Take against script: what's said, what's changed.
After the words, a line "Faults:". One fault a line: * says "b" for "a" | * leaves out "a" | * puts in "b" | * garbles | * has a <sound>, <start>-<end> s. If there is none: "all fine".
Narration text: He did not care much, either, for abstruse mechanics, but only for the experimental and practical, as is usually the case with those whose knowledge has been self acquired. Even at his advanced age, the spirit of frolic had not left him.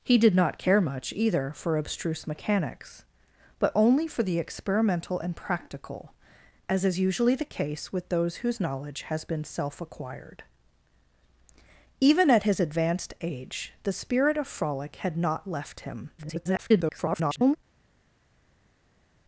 He did not care much, either, for abstruse mechanics, but only for the experimental and practical, as is usually the case with those whose knowledge has been self acquired. Even at his advanced age, the spirit of frolic had not left him. [garbled]
Faults:
* garbles